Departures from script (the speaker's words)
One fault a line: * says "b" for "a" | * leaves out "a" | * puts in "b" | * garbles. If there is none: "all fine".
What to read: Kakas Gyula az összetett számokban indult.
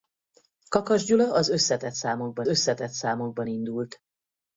* puts in "összetett számokban"